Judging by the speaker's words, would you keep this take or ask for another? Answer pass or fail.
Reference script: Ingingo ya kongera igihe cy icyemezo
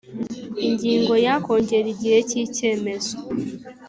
pass